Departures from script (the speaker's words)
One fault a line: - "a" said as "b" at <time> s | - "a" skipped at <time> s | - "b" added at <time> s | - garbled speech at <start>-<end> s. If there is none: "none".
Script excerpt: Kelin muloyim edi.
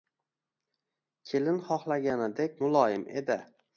- "xohlaganidek" added at 1.7 s